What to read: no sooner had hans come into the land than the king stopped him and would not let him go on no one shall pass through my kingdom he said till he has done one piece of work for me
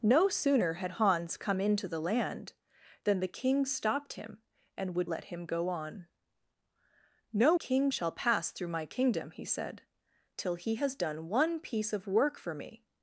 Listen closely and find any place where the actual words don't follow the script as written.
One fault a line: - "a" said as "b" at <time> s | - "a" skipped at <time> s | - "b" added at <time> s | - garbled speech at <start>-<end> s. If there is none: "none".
- "not" skipped at 5.1 s
- "one" said as "king" at 7.5 s